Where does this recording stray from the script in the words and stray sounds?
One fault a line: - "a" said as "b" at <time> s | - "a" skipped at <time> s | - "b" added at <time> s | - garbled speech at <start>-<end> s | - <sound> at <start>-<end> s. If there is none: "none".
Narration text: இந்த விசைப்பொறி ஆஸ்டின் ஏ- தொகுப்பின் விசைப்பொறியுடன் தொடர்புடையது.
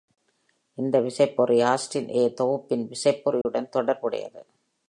- dropout at 3.4-3.5 s